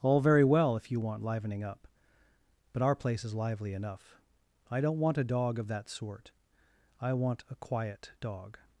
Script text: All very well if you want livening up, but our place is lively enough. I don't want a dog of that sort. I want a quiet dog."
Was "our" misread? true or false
false